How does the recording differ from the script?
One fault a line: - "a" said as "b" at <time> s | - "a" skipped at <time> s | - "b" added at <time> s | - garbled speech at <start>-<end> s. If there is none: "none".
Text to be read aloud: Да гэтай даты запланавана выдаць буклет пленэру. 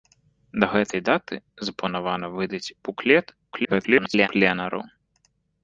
- garbled speech at 3.5-4.3 s